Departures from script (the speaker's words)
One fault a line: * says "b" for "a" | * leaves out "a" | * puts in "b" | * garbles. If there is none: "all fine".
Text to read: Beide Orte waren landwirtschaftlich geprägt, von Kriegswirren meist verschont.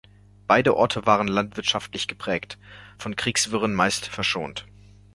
all fine